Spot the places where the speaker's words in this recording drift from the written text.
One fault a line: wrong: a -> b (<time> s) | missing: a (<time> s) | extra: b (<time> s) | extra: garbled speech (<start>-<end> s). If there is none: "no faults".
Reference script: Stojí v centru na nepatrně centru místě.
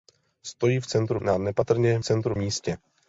no faults